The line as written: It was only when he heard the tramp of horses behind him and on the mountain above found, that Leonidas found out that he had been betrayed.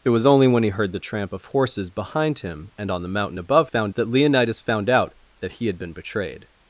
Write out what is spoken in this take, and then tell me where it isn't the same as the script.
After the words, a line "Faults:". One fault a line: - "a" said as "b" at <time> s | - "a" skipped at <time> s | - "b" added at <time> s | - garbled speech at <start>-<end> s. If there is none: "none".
It was only when he heard the tramp of horses behind him and on the mountain above found, that Leonidas found out that he had been betrayed.
Faults:
none